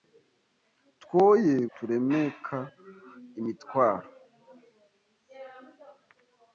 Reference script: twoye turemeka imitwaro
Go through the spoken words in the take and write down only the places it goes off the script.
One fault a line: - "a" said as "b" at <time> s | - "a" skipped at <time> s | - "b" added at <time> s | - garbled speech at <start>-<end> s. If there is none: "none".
none